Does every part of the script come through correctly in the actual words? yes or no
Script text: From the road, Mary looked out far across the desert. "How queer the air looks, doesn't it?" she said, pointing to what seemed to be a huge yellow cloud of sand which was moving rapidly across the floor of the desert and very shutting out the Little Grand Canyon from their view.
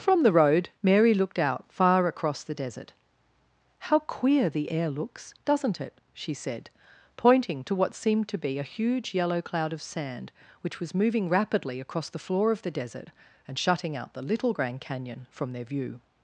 no